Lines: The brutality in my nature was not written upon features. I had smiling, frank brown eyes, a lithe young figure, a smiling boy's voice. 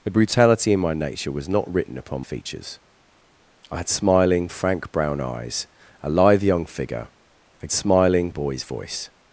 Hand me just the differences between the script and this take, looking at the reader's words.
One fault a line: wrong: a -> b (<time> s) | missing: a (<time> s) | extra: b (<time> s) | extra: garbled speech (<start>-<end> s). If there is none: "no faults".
no faults